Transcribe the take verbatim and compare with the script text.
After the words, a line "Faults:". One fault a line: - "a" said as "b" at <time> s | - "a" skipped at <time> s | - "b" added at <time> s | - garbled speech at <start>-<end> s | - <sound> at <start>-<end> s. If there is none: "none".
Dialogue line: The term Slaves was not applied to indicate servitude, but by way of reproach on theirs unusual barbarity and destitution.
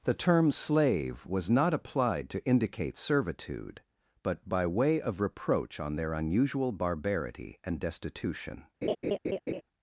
The term Slave was not applied to indicate servitude, but by way of reproach on their unusual barbarity and destitution.
Faults:
- "Slaves" said as "Slave" at 0.5 s
- "theirs" said as "their" at 6.0 s
- laugh at 8.8-9.6 s